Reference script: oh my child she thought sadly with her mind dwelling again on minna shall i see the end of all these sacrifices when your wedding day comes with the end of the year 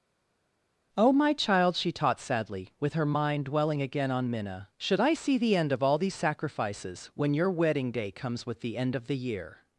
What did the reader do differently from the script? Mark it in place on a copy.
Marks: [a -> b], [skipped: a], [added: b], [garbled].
oh my child she [thought -> taught] sadly with her mind dwelling again on minna [shall -> should] i see the end of all these sacrifices when your wedding day comes with the end of the year